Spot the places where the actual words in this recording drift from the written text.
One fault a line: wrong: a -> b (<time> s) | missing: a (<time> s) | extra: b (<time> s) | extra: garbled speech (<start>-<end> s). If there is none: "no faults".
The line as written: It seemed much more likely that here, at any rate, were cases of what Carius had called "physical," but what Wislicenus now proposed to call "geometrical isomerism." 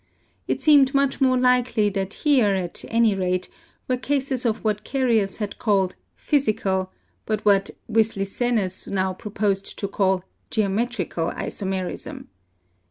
no faults